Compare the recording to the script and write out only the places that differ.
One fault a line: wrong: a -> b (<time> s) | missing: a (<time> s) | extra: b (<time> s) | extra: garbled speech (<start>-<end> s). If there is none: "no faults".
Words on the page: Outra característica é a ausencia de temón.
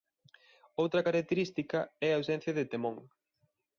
no faults